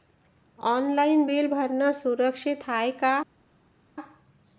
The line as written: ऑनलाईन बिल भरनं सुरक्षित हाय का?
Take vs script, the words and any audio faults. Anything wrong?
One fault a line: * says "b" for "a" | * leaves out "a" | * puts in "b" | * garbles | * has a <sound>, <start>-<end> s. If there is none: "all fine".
all fine